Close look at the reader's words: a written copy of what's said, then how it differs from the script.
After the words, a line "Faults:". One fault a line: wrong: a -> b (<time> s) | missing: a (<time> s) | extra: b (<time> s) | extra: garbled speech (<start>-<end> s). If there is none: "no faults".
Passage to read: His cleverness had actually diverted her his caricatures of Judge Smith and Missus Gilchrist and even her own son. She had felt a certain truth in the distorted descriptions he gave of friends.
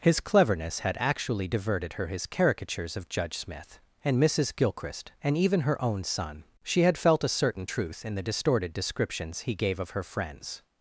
His cleverness had actually diverted her his caricatures of Judge Smith and Missus Gilchrist and even her own son. She had felt a certain truth in the distorted descriptions he gave of her friends.
Faults:
extra: her (9.9 s)